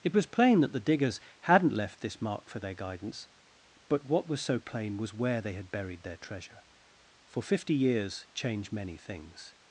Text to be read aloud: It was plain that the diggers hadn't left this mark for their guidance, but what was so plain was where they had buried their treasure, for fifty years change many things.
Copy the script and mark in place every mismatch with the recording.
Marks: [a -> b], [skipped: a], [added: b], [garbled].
It was plain that the diggers hadn't left this mark for their guidance, but what was so plain was where they had buried their treasure, for fifty years change many things.